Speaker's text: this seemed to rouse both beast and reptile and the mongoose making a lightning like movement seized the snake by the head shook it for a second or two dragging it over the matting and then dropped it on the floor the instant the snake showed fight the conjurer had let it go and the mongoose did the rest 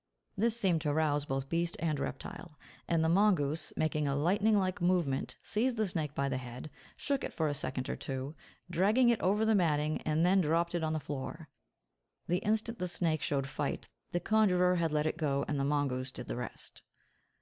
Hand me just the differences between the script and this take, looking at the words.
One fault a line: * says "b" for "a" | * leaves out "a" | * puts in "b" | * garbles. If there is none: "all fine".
all fine